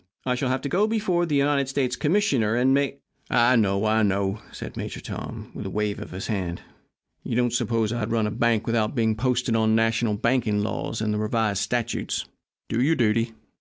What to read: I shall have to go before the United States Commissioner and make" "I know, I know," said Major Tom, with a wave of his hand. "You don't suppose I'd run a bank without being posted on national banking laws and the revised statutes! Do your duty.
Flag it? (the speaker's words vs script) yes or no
no